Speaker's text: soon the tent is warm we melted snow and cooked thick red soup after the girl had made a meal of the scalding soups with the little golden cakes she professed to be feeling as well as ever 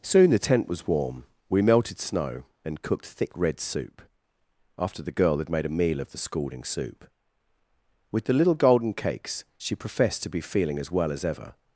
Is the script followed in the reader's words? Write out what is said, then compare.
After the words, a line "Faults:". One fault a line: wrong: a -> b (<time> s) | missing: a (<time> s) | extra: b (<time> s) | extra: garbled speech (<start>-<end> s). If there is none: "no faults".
soon the tent was warm we melted snow and cooked thick red soup after the girl had made a meal of the scalding soup with the little golden cakes she professed to be feeling as well as ever
Faults:
wrong: is -> was (0.7 s)
wrong: soups -> soup (6.6 s)